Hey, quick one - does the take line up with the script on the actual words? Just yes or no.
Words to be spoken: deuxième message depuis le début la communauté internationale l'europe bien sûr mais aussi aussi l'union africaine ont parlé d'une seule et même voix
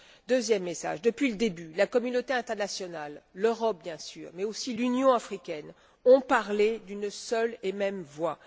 no